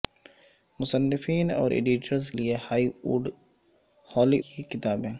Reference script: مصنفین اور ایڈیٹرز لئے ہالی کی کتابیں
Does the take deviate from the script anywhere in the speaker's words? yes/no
no